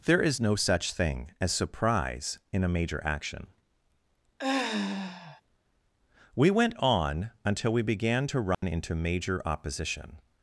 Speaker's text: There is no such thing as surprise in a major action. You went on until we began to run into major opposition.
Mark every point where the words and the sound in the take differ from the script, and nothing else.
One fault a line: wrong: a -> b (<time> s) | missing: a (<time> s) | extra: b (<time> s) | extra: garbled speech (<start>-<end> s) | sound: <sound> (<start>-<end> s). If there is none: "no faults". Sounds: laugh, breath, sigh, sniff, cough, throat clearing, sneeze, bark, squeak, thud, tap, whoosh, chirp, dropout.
sound: sigh (4.4-5.4 s)
wrong: You -> We (6.3 s)
sound: dropout (8.5-8.6 s)